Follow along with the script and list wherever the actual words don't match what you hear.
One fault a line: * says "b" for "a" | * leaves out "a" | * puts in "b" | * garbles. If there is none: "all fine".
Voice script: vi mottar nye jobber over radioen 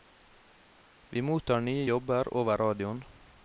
all fine